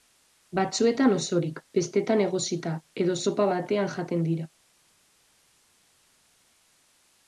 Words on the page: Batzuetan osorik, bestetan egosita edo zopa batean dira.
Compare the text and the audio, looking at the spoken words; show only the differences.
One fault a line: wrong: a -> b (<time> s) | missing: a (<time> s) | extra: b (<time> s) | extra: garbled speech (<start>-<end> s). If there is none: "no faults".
extra: jaten (4.0 s)